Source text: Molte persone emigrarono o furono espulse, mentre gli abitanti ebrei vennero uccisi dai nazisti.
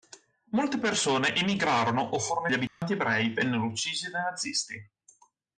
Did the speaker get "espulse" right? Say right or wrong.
wrong